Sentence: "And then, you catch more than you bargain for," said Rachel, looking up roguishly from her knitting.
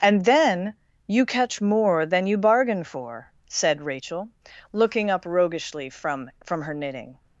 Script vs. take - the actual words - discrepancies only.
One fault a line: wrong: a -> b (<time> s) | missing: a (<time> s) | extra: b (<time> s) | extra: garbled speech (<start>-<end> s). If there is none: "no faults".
extra: from (6.4 s)